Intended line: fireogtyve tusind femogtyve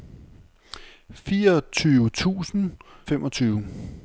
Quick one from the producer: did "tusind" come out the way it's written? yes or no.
yes